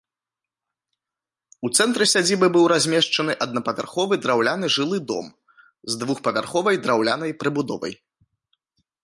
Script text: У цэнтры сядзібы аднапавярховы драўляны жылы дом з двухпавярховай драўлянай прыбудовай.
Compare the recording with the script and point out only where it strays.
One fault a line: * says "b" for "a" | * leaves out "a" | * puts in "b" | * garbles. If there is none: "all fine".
* puts in "быў размешчаны"